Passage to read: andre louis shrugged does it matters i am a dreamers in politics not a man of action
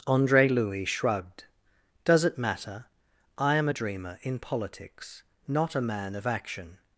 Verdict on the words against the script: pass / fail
fail